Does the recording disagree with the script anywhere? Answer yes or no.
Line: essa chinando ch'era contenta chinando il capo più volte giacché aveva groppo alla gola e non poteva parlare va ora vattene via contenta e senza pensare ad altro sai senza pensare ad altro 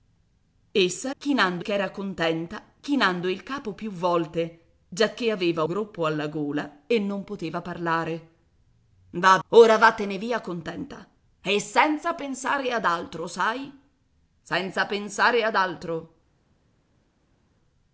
no